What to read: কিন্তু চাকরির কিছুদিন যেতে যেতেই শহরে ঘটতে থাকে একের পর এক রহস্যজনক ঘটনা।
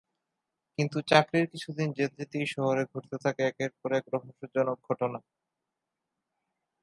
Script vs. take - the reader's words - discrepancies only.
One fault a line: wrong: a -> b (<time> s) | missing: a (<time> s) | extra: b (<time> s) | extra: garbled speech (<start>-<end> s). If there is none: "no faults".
no faults